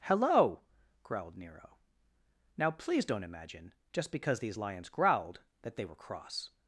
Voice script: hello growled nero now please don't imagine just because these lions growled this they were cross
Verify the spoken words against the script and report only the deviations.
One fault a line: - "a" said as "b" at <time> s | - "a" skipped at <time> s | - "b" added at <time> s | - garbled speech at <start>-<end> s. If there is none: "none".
- "this" said as "that" at 5.6 s